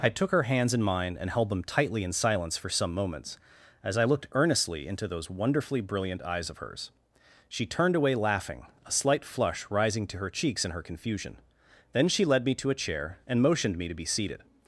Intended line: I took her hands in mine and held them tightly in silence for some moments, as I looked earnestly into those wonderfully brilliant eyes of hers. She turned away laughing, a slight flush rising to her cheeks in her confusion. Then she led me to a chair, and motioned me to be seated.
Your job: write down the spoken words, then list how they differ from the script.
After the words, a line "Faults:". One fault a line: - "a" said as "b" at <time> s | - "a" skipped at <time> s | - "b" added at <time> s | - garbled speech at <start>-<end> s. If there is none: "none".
I took her hands in mine and held them tightly in silence for some moments, as I looked earnestly into those wonderfully brilliant eyes of hers. She turned away laughing, a slight flush rising to her cheeks in her confusion. Then she led me to a chair, and motioned me to be seated.
Faults:
none